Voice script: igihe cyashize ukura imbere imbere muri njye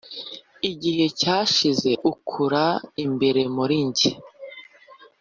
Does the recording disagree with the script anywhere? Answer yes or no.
yes